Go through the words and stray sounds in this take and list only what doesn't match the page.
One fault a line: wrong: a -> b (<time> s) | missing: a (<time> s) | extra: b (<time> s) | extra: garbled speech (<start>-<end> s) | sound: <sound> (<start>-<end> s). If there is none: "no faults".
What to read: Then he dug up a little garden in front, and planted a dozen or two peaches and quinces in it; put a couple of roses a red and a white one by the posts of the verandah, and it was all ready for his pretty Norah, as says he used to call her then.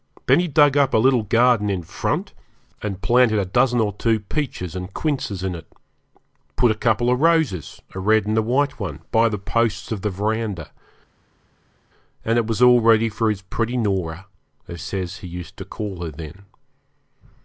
no faults